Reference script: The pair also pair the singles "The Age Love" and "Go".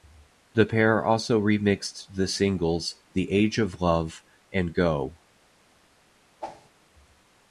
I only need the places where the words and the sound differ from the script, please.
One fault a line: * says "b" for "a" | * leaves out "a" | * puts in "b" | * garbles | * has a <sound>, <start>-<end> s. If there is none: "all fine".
* says "remixed" for "pair"
* puts in "of"
* has a whoosh, 6.4-6.7 s